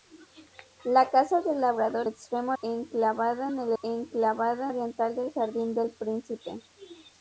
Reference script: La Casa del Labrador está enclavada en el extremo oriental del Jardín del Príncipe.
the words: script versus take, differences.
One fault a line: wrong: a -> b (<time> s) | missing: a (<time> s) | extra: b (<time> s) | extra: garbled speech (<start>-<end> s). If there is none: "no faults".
wrong: está -> extremo (2.0 s)
wrong: extremo -> enclavada (3.8 s)